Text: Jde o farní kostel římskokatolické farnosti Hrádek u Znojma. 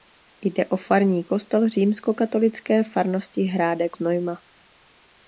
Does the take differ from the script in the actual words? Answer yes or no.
yes